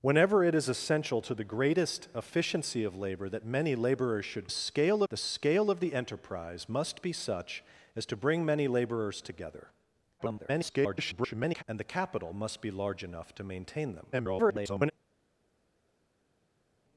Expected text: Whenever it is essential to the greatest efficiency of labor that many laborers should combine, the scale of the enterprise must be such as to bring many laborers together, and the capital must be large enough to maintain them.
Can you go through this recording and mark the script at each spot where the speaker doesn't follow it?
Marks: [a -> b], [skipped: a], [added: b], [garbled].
Whenever it is essential to the greatest efficiency of labor that many laborers should [combine, -> scale] the scale of the enterprise must be such as to bring many laborers together, [garbled] and the capital must be large enough to maintain them. [garbled]